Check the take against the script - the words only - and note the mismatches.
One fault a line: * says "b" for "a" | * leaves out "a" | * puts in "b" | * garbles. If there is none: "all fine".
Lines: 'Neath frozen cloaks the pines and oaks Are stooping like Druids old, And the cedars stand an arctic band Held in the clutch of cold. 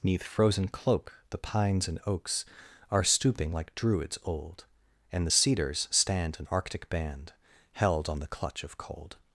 * says "cloak" for "cloaks"
* says "on" for "in"